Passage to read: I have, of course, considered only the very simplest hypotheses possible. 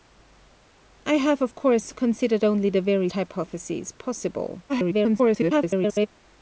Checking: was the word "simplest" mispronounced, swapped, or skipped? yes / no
yes